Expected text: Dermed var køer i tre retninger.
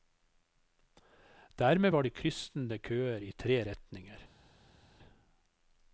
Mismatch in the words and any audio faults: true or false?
true